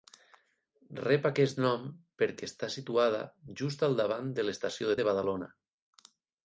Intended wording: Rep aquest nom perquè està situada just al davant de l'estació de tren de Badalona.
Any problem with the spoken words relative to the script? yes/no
yes